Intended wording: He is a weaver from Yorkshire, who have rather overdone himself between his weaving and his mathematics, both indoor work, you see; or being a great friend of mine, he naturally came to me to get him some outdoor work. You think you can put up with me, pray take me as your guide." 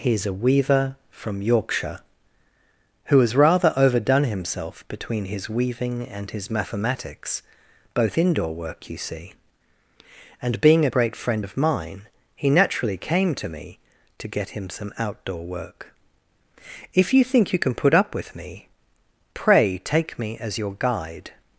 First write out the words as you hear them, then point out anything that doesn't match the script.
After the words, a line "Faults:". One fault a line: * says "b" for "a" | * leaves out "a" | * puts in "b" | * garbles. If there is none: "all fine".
He is a weaver from Yorkshire, who has rather overdone himself between his weaving and his mathematics, both indoor work, you see; and being a great friend of mine, he naturally came to me to get him some outdoor work. If you think you can put up with me, pray take me as your guide."
Faults:
* says "has" for "have"
* says "and" for "or"
* puts in "If"